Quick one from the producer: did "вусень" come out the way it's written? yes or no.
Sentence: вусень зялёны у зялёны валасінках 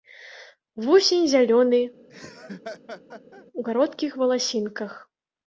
yes